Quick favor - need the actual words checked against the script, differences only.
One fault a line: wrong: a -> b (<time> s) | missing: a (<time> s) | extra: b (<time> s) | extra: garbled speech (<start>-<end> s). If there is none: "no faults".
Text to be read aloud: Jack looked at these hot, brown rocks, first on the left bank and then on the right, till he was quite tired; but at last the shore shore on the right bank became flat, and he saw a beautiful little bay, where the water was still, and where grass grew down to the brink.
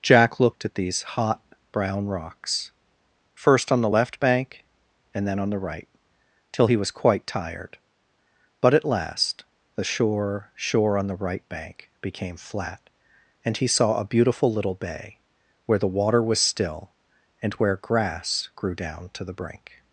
no faults